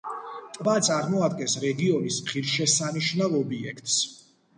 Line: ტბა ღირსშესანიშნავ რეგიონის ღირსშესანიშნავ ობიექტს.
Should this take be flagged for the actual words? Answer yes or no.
yes